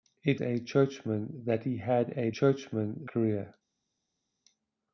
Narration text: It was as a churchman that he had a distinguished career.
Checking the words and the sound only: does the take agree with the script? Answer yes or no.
no